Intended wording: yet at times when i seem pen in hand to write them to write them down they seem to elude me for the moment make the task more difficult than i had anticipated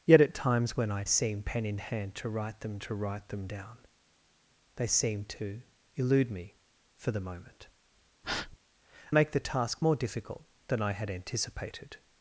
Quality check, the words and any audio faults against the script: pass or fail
fail